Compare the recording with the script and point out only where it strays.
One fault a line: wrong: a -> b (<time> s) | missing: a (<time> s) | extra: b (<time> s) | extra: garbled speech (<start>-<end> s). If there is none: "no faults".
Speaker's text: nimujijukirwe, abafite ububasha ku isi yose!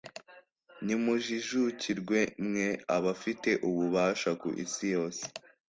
extra: mwe (2.5 s)